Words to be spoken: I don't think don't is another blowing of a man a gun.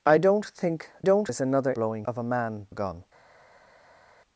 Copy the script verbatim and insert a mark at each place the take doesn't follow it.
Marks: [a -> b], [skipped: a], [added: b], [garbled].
I don't think don't is another blowing of a man a gun.